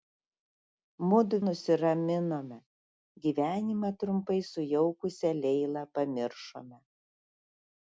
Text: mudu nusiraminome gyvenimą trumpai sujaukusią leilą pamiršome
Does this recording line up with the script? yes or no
yes